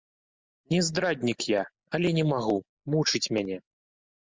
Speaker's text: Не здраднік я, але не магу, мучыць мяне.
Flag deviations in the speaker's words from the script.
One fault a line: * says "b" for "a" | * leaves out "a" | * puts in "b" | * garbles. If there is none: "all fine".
all fine